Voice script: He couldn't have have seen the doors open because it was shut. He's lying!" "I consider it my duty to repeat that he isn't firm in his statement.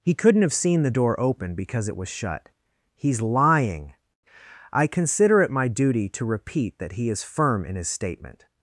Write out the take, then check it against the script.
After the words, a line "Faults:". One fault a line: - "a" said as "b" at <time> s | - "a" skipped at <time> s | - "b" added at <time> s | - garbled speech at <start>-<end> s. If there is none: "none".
He couldn't have seen the door open because it was shut. He's lying!" "I consider it my duty to repeat that he is firm in his statement.
Faults:
- "have" skipped at 0.5 s
- "doors" said as "door" at 0.9 s
- "isn't" said as "is" at 7.1 s